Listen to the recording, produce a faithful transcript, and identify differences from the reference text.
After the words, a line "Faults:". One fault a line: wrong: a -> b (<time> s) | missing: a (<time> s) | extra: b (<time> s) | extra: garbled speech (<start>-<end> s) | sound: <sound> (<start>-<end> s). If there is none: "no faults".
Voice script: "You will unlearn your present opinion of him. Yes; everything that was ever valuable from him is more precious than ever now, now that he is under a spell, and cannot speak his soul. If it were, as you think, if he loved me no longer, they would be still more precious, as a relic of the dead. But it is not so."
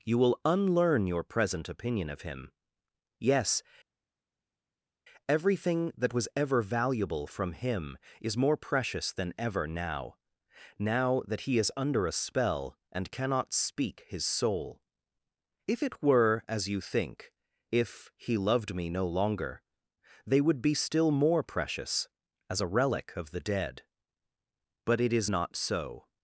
"You will unlearn your present opinion of him. Yes; everything that was ever valuable from him is more precious than ever now, now that he is under a spell, and cannot speak his soul. If it were, as you think, if he loved me no longer, they would be still more precious, as a relic of the dead. But it is not so."
Faults:
no faults